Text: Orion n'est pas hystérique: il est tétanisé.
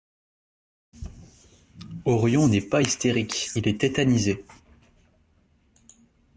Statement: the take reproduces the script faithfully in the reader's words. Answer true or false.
true